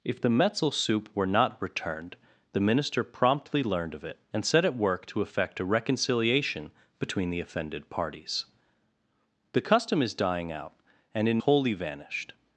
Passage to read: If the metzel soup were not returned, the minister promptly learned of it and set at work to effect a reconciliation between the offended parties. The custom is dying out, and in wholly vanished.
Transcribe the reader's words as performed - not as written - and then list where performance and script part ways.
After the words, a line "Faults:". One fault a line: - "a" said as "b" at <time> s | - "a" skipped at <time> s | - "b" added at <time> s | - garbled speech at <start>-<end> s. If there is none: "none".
If the metzel soup were not returned, the minister promptly learned of it and set at work to effect a reconciliation between the offended parties. The custom is dying out, and in wholly vanished.
Faults:
none